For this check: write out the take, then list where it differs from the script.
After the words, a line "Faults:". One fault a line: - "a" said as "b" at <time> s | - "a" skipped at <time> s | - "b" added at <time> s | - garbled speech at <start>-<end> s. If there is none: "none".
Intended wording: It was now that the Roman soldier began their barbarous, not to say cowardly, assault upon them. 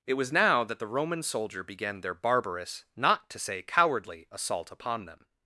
It was now that the Roman soldier began their barbarous, not to say cowardly, assault upon them.
Faults:
none